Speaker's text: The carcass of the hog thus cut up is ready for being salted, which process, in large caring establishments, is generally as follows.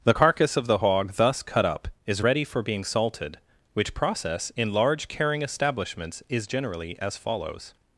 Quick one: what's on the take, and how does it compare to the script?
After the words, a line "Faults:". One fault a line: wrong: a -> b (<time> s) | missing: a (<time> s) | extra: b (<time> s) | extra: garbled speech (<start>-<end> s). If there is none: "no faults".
The carcass of the hog thus cut up is ready for being salted, which process, in large caring establishments, is generally as follows.
Faults:
no faults